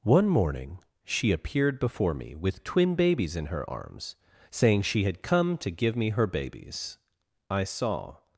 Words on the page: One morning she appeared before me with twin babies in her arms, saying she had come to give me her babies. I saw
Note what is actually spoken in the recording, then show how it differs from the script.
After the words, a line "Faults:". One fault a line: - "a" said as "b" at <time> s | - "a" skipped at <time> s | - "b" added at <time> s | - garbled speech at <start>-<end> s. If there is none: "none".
One morning she appeared before me with twin babies in her arms, saying she had come to give me her babies. I saw
Faults:
none